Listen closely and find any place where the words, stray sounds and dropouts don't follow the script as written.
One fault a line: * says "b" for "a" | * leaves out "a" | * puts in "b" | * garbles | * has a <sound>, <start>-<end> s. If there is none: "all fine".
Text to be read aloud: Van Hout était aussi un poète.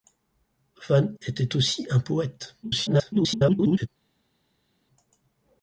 * leaves out "Hout"
* garbles